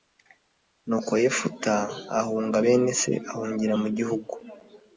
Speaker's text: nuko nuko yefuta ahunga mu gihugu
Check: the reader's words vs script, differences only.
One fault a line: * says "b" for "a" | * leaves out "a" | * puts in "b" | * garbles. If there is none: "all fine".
* leaves out "nuko"
* puts in "bene se ahungira"